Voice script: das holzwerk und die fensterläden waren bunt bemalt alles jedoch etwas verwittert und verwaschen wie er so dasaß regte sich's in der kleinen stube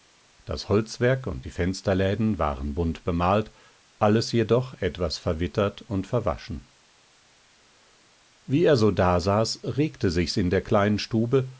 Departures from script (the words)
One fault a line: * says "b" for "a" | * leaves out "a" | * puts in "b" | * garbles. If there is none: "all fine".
all fine